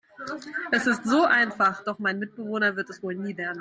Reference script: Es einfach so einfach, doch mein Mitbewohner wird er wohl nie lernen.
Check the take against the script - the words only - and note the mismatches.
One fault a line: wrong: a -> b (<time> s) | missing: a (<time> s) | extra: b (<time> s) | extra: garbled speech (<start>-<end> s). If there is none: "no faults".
wrong: einfach -> ist (0.9 s)
wrong: er -> es (2.9 s)